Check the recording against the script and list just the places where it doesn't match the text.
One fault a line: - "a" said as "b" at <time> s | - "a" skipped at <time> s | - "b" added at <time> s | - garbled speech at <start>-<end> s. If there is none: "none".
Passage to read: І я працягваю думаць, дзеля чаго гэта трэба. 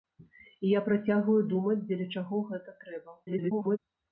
- garbled speech at 3.3-3.8 s